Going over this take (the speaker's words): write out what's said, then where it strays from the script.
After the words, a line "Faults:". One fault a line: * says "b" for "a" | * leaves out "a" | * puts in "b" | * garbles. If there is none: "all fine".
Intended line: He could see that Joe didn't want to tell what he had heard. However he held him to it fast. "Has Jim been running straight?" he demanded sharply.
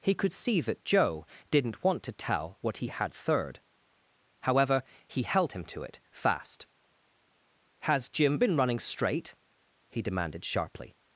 He could see that Joe didn't want to tell what he had third. However he held him to it fast. "Has Jim been running straight?" he demanded sharply.
Faults:
* says "third" for "heard"